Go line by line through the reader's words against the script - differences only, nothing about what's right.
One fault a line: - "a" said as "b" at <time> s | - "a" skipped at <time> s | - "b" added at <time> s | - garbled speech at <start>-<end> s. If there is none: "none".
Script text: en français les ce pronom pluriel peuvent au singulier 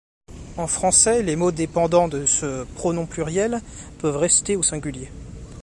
- "mots dépendant de" added at 1.4 s
- "rester" added at 4.1 s